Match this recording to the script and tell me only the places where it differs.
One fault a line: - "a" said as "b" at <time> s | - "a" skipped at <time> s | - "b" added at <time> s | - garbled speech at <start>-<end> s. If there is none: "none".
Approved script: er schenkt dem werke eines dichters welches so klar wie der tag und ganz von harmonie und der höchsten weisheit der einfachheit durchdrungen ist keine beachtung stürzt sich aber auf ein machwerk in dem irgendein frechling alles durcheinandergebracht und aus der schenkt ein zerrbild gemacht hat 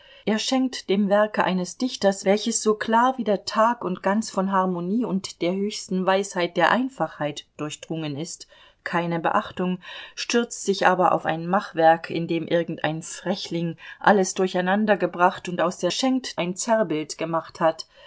none